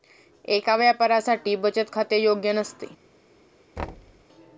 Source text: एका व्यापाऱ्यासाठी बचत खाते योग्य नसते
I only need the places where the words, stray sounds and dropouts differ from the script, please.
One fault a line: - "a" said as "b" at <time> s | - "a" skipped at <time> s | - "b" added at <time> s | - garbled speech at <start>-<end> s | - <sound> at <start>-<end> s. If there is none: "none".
- thud at 3.8-4.3 s